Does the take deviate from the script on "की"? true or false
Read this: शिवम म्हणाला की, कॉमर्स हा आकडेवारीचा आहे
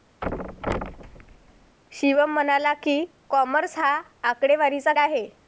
false